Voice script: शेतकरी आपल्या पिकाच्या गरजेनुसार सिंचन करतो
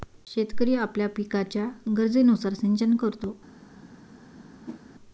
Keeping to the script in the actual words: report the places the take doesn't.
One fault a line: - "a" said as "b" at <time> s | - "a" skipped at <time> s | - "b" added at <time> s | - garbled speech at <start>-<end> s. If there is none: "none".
none